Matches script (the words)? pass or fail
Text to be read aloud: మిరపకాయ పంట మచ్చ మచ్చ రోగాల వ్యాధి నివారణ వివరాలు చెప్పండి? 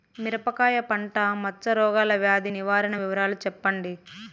fail